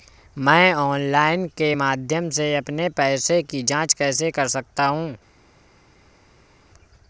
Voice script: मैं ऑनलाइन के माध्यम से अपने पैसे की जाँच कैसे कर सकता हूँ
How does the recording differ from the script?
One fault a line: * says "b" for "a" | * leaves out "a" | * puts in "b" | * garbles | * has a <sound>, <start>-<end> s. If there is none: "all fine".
all fine